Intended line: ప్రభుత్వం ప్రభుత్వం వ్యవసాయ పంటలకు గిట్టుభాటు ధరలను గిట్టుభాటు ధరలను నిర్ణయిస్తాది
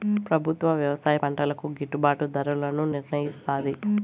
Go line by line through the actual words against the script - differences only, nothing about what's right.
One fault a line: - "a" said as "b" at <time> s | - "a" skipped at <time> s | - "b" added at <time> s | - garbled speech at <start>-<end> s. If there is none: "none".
- "ప్రభుత్వం" skipped at 0.7 s
- "గిట్టుభాటు ధరలను" skipped at 2.8 s